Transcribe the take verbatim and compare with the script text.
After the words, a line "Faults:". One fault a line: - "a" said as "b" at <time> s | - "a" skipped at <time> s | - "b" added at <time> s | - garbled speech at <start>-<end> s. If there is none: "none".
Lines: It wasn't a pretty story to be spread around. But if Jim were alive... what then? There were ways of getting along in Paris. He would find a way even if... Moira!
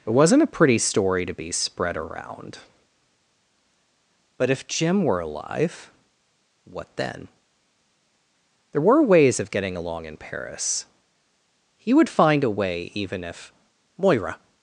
It wasn't a pretty story to be spread around. But if Jim were alive... what then? There were ways of getting along in Paris. He would find a way even if... Moira!
Faults:
none